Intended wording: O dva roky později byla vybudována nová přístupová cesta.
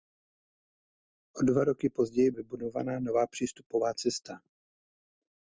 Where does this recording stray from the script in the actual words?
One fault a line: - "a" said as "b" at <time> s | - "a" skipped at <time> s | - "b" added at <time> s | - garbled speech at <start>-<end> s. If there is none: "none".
- "byla" skipped at 2.3 s